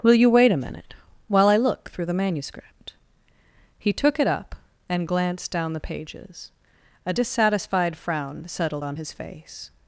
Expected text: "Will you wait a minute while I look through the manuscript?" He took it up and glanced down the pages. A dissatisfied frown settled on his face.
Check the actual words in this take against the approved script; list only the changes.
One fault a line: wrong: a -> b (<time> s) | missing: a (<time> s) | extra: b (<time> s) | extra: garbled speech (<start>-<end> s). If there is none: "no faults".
no faults